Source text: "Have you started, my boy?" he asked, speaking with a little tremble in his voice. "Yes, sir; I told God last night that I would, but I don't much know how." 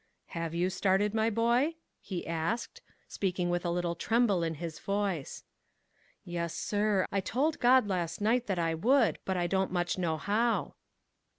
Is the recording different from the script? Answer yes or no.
no